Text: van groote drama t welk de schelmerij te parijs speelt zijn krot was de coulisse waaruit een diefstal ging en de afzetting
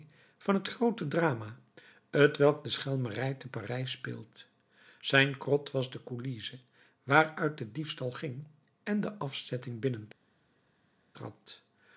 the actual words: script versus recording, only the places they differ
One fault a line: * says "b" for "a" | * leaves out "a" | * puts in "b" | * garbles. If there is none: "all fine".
* puts in "het"
* says "de" for "een"